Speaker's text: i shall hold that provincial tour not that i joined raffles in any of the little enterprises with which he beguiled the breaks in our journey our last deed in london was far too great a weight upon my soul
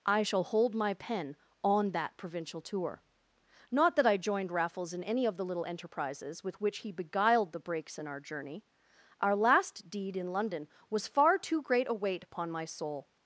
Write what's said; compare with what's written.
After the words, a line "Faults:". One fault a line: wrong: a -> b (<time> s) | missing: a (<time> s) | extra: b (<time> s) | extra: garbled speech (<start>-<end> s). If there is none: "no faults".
i shall hold my pen on that provincial tour not that i joined raffles in any of the little enterprises with which he beguiled the breaks in our journey our last deed in london was far too great a weight upon my soul
Faults:
extra: my pen on (0.7 s)